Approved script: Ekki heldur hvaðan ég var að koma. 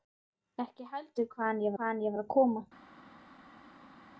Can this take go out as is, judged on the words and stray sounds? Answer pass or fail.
fail